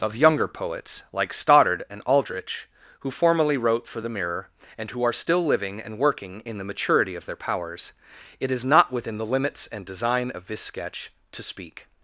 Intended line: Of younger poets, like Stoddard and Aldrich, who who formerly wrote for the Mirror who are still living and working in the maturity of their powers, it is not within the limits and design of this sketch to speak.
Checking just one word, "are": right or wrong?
right